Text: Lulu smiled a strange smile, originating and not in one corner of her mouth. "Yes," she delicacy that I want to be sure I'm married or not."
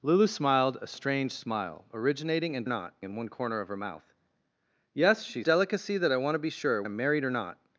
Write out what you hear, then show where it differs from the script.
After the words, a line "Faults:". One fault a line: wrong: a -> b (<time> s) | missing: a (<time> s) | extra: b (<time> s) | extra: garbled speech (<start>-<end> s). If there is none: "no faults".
Lulu smiled a strange smile, originating and not in one corner of her mouth. "Yes," she delicacy that I want to be sure I'm married or not."
Faults:
no faults